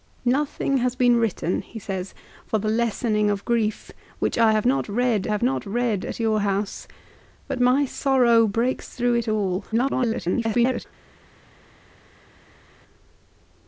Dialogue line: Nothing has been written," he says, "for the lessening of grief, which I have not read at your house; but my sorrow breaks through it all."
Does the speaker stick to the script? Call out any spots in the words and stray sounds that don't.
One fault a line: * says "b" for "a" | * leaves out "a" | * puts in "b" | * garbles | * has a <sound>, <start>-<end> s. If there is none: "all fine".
* puts in "have not read"
* garbles